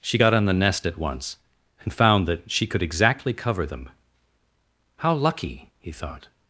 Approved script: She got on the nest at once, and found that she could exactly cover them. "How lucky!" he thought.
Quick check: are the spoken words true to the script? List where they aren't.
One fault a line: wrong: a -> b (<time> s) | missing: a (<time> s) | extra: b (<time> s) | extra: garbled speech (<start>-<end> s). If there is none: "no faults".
no faults